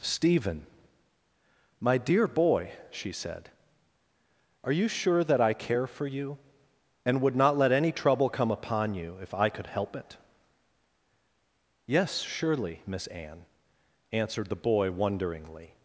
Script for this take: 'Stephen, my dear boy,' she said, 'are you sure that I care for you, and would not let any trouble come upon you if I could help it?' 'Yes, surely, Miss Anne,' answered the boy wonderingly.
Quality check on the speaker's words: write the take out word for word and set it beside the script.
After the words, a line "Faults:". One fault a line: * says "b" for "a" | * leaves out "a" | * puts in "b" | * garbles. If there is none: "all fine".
'Stephen, my dear boy,' she said, 'are you sure that I care for you, and would not let any trouble come upon you if I could help it?' 'Yes, surely, Miss Anne,' answered the boy wonderingly.
Faults:
all fine